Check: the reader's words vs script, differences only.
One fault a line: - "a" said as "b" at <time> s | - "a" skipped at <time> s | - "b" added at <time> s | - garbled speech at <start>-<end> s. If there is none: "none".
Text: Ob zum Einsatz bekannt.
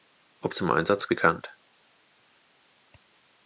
none